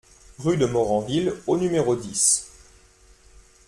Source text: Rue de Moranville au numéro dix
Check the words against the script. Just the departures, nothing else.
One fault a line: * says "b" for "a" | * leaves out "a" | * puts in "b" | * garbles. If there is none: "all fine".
all fine